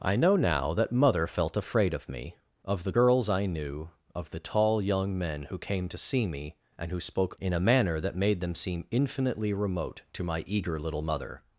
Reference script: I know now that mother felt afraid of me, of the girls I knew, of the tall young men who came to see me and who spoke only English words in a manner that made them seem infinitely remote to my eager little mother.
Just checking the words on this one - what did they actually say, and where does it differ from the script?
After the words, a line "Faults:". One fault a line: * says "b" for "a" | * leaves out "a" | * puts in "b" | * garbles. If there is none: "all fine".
I know now that mother felt afraid of me, of the girls I knew, of the tall young men who came to see me and who spoke in a manner that made them seem infinitely remote to my eager little mother.
Faults:
* leaves out "only English words"